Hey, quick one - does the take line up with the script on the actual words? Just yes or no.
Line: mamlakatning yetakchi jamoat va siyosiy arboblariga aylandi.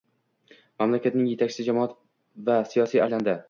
no